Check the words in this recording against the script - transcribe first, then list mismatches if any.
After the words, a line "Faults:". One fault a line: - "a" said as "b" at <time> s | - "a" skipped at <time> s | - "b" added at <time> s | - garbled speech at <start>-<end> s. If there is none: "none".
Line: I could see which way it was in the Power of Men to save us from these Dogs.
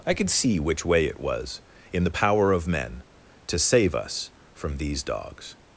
I could see which way it was in the Power of Men to save us from these Dogs.
Faults:
none